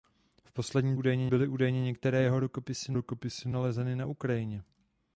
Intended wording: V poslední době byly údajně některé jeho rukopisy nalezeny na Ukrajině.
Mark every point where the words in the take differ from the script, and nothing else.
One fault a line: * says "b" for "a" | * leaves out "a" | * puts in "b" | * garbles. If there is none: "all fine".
* says "údajně" for "době"
* puts in "rukopisy"